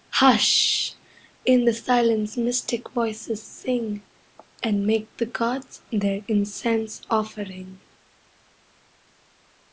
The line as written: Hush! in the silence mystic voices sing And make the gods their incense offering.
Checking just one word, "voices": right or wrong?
right